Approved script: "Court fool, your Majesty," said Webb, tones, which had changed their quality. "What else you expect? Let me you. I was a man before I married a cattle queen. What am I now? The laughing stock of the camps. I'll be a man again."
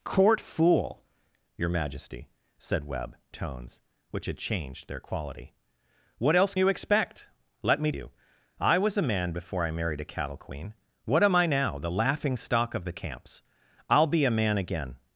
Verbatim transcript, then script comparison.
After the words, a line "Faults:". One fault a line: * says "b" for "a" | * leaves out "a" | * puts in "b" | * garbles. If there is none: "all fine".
"Court fool, your Majesty," said Webb, tones, which had changed their quality. "What else you expect? Let me you. I was a man before I married a cattle queen. What am I now? The laughing stock of the camps. I'll be a man again."
Faults:
all fine